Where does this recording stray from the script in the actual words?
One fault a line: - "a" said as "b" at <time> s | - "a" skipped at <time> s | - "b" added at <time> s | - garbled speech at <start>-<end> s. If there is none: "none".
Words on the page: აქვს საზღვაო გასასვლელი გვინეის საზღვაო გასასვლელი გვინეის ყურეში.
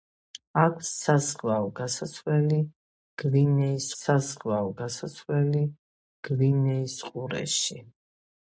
none